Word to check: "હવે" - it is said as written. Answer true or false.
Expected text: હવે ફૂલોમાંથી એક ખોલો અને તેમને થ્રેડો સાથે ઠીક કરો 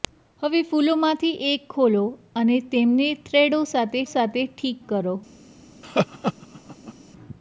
true